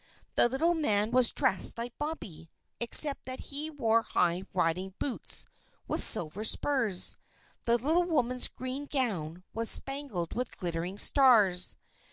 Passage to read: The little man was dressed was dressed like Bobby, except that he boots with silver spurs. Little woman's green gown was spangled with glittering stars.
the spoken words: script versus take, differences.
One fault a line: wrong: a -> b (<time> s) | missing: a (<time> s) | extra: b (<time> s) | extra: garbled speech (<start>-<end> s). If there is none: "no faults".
missing: was dressed (1.8 s)
extra: wore high riding (3.7 s)
extra: The (7.6 s)